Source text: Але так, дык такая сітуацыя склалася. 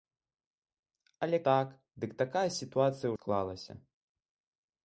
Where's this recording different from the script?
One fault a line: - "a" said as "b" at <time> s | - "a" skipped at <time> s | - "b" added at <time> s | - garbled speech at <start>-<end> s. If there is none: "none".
none